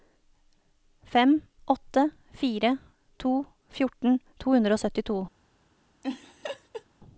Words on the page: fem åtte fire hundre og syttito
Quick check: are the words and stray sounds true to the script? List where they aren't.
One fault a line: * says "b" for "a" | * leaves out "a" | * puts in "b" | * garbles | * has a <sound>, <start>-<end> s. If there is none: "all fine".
* puts in "to fjorten to"
* has a laugh, 6.0-6.8 s